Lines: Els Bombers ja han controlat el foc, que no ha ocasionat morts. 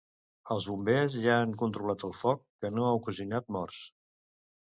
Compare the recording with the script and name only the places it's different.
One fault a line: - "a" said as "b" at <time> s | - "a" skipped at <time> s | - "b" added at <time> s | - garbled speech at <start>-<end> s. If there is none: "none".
none